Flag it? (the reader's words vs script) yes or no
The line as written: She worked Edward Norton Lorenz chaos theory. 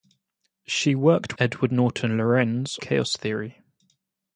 no